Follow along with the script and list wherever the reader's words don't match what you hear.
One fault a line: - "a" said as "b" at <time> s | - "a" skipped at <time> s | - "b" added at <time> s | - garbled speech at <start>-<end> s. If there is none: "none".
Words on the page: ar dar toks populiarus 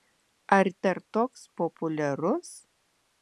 none